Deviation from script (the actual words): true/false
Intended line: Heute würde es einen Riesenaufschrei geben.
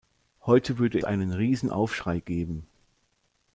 true